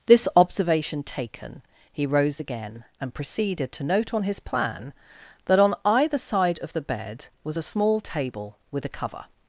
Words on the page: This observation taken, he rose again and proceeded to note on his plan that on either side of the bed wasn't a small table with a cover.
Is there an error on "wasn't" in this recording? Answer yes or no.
yes